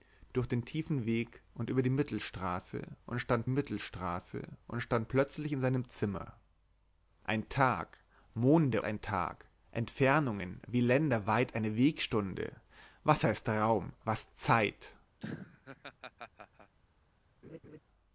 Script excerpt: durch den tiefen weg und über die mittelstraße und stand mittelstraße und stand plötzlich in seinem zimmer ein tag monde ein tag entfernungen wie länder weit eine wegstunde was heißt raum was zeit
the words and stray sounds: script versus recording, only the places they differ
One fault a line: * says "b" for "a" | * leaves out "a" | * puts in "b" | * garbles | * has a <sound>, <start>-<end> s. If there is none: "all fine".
* has a laugh, 15.2-16.7 s
* has a laugh, 17.4-17.8 s